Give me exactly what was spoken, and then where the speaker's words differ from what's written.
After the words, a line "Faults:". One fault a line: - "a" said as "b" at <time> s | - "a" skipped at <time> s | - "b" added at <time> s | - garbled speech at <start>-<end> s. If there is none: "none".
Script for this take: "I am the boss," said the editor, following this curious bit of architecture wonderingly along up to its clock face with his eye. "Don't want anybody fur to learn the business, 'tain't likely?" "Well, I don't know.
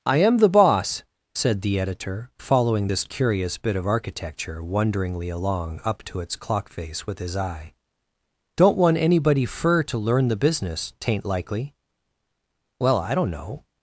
"I am the boss," said the editor, following this curious bit of architecture wonderingly along up to its clock face with his eye. "Don't want anybody fur to learn the business, 'tain't likely?" "Well, I don't know.
Faults:
none